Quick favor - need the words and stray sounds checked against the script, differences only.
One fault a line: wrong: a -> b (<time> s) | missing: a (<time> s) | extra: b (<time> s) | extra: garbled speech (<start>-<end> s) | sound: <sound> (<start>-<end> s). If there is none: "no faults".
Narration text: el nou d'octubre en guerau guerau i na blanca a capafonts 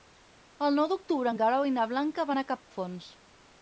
missing: guerau (1.7 s)
extra: van (2.3 s)
sound: dropout (2.6-2.7 s)